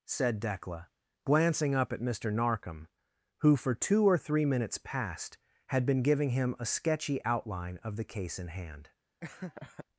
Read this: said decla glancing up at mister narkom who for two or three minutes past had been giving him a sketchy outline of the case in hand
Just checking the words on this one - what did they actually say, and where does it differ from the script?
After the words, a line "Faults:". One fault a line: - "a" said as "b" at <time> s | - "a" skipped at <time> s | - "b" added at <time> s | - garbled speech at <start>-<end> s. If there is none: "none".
said decla glancing up at mister narkom who for two or three minutes past had been giving him a sketchy outline of the case in hand
Faults:
none